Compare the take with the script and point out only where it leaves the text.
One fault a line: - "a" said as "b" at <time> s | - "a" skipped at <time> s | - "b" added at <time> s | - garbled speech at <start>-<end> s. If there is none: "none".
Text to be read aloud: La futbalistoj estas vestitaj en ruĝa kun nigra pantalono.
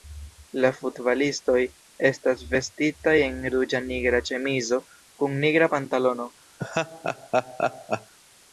- "nigra ĉemizo" added at 3.9 s